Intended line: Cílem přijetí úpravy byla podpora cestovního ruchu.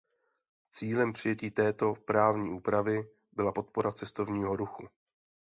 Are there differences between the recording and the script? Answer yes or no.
yes